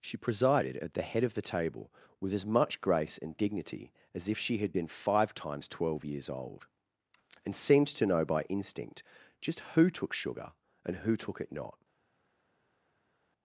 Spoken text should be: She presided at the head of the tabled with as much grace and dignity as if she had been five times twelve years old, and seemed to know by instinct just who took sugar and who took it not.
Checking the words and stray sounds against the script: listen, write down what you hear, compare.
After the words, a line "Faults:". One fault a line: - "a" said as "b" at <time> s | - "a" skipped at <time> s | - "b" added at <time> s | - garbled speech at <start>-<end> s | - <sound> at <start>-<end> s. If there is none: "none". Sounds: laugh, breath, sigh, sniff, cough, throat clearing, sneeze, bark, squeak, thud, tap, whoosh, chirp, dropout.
She presided at the head of the table with as much grace and dignity as if she had been five times twelve years old, and seemed to know by instinct just who took sugar and who took it not.
Faults:
- "tabled" said as "table" at 1.4 s